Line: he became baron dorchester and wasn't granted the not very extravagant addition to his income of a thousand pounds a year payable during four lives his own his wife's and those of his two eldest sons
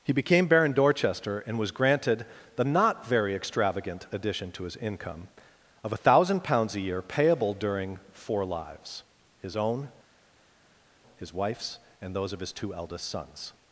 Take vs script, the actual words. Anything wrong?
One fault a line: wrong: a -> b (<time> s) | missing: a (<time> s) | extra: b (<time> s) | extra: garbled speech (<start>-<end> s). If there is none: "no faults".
wrong: wasn't -> was (1.6 s)